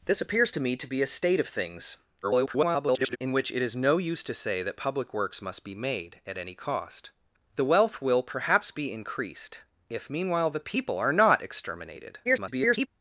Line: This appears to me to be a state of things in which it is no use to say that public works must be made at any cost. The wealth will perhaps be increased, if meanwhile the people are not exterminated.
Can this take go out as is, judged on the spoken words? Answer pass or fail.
fail